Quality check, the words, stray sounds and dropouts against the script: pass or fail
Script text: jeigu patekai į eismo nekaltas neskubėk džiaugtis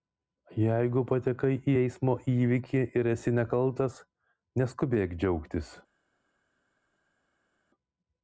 fail